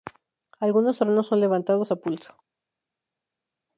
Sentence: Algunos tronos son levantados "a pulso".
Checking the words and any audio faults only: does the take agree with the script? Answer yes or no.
yes